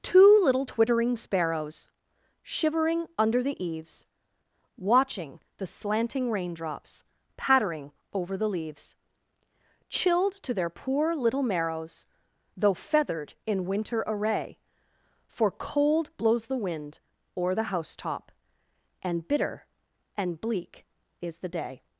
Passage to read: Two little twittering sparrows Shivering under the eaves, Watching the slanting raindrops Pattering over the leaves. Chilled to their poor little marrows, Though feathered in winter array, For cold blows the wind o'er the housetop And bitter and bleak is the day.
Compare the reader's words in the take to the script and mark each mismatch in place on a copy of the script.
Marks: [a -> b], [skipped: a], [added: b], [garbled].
Two little twittering sparrows Shivering under the eaves, Watching the slanting raindrops Pattering over the leaves. Chilled to their poor little marrows, Though feathered in winter array, For cold blows the wind o'er the housetop And bitter and bleak is the day.